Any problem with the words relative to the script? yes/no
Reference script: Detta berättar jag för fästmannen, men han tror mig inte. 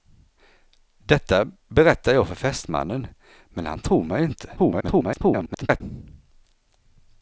yes